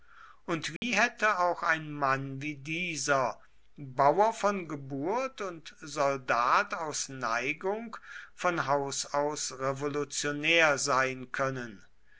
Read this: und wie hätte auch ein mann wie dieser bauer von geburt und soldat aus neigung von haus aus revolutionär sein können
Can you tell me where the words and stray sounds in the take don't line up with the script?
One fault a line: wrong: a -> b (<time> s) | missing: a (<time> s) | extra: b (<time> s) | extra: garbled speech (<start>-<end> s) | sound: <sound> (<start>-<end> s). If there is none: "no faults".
sound: dropout (0.8-0.8 s)